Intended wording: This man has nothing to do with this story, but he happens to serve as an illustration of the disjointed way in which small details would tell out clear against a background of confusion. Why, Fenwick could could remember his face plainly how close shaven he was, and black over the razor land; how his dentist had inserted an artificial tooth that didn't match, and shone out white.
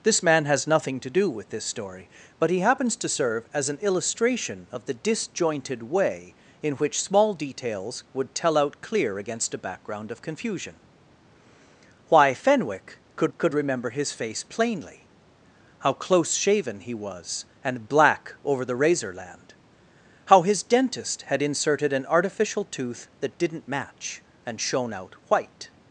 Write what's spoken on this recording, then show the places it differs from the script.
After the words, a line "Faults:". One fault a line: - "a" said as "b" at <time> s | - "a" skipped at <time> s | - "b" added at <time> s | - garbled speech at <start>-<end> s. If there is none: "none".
This man has nothing to do with this story, but he happens to serve as an illustration of the disjointed way in which small details would tell out clear against a background of confusion. Why, Fenwick could could remember his face plainly how close shaven he was, and black over the razor land; how his dentist had inserted an artificial tooth that didn't match, and shone out white.
Faults:
none